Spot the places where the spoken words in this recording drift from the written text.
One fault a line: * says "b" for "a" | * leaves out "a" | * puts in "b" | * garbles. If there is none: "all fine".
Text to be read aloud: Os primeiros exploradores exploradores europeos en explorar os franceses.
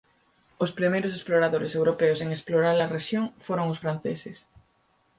* leaves out "exploradores"
* puts in "a rexión foron"